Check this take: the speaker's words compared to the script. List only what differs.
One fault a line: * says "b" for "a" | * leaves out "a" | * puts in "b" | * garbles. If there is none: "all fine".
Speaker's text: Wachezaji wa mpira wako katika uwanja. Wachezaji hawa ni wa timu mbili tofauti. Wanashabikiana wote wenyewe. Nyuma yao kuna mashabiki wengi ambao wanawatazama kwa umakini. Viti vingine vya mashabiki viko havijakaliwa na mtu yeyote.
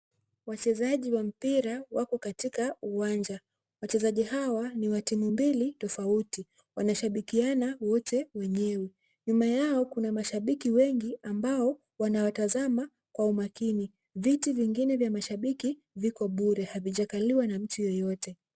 * puts in "bure"